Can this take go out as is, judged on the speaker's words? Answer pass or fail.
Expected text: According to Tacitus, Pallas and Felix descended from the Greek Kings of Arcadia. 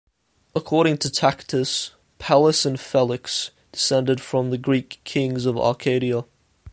pass